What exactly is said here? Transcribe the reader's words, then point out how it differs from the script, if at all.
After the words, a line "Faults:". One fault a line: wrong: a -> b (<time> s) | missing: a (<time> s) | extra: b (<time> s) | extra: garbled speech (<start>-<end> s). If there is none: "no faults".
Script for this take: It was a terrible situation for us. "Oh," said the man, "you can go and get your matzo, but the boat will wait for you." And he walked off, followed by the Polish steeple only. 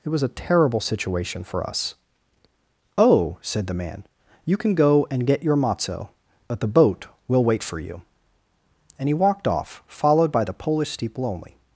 It was a terrible situation for us. "Oh," said the man, "you can go and get your matzo, but the boat will wait for you." And he walked off, followed by the Polish steeple only.
Faults:
no faults